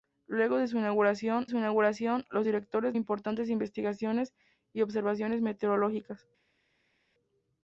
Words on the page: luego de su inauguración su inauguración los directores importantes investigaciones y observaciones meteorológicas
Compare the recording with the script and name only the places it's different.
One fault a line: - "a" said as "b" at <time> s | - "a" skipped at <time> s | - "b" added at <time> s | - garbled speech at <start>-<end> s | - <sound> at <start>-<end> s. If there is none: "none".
none